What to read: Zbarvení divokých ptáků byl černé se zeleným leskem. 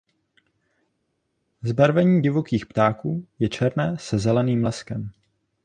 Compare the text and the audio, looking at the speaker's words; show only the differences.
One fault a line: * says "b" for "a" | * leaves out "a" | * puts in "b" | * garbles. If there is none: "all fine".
* says "je" for "byl"